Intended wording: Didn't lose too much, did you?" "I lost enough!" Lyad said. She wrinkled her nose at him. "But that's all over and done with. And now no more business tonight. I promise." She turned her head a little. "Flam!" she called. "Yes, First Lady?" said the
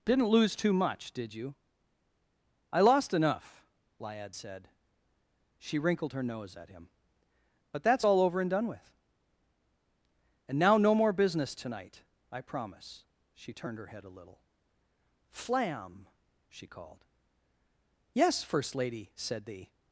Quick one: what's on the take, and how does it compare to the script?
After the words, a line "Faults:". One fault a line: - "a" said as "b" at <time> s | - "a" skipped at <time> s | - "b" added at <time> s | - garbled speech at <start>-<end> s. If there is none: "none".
Didn't lose too much, did you?" "I lost enough!" Lyad said. She wrinkled her nose at him. "But that's all over and done with. And now no more business tonight. I promise." She turned her head a little. "Flam!" she called. "Yes, First Lady?" said the
Faults:
none